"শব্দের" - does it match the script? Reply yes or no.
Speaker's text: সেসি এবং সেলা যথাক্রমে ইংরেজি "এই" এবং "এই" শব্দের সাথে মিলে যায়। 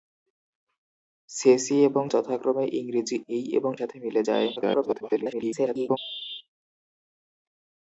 no